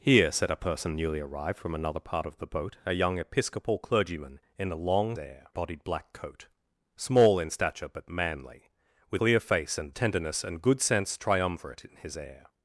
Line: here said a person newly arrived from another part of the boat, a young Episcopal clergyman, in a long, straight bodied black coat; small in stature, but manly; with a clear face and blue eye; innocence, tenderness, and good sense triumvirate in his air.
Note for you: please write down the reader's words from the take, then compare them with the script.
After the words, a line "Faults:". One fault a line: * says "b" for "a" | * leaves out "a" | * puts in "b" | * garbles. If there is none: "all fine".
here said a person newly arrived from another part of the boat, a young Episcopal clergyman, in a long, air bodied black coat; small in stature, but manly; with clear face and tenderness, and good sense triumvirate in his air.
Faults:
* says "air" for "straight"
* leaves out "a"
* leaves out "blue eye innocence"